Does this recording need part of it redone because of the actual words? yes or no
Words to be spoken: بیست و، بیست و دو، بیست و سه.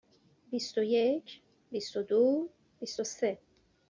yes